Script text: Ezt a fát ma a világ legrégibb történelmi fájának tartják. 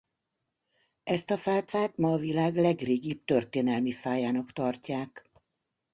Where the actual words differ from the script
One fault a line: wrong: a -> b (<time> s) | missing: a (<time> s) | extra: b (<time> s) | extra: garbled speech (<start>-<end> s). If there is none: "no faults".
extra: fát (1.6 s)